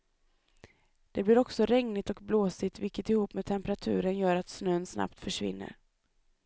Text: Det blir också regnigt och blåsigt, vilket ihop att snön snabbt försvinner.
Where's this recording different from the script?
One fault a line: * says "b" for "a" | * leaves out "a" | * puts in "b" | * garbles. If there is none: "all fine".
* puts in "med temperaturen gör"